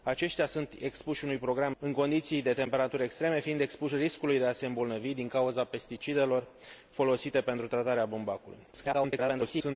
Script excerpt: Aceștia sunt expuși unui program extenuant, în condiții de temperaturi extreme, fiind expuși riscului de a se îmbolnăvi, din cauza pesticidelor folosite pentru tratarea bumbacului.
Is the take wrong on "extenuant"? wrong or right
wrong